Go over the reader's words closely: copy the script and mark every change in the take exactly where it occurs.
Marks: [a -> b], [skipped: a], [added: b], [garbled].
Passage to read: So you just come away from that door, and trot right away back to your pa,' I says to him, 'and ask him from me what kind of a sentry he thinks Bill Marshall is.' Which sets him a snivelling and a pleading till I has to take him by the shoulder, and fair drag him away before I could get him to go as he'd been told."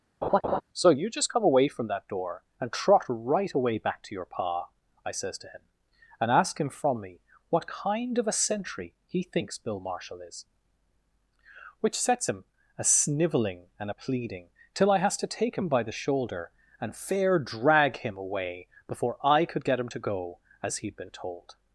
So you just come away from that door, and trot right away back to your pa,' I says to him, 'and ask him from me what kind of a sentry he thinks Bill Marshall is.' Which sets him a snivelling and a pleading till I has to take him by the shoulder, and fair drag him away before I could get him to go as he'd been told."